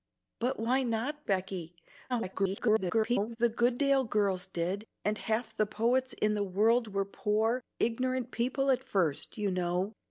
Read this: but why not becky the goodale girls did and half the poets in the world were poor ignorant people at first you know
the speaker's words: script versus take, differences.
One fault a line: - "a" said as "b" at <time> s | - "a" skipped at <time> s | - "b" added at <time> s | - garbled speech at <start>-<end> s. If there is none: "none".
- garbled speech at 2.1-3.4 s